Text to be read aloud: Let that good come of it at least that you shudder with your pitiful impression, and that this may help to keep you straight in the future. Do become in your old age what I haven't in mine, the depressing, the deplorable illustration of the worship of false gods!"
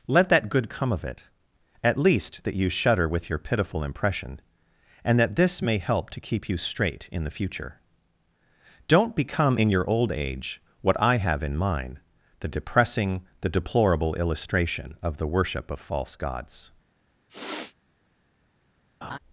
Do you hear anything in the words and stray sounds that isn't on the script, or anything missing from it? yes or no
yes